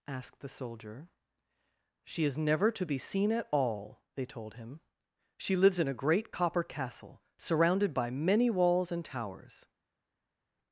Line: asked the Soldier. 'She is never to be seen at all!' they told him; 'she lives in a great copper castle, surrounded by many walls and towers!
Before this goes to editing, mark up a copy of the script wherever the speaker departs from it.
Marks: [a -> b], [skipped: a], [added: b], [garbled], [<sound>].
asked the Soldier. 'She is never to be seen at all!' they told him; 'she lives in a great copper castle, surrounded by many walls and towers!